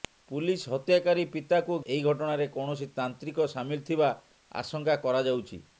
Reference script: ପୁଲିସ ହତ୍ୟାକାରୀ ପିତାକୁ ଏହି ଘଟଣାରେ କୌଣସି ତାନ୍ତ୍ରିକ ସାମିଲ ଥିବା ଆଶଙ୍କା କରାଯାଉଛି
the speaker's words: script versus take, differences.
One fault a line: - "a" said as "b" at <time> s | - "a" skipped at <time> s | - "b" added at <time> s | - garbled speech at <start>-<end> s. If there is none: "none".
none